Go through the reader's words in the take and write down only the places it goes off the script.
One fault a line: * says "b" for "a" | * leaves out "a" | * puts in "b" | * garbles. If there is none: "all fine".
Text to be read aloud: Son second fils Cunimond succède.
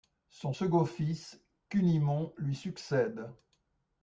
* puts in "lui"